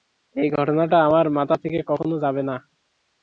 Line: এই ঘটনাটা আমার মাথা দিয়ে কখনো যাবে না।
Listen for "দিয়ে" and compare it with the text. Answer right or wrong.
wrong